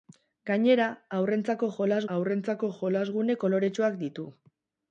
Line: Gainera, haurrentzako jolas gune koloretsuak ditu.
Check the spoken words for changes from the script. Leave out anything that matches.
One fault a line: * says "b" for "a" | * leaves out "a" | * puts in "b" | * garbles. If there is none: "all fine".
* puts in "haurrentzako jolas"